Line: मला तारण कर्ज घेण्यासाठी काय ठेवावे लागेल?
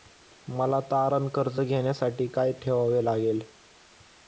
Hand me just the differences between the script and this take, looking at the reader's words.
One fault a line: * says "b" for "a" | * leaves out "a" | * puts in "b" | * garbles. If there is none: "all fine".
all fine